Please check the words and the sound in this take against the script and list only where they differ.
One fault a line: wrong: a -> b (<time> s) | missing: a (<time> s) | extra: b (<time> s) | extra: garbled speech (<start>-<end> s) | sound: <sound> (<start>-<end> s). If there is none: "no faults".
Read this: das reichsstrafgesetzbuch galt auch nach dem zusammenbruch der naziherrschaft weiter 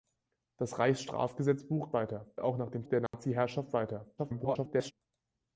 wrong: galt -> weiter (1.9 s)
missing: zusammenbruch (2.8 s)
sound: dropout (3.1-3.1 s)
extra: garbled speech (4.2-4.9 s)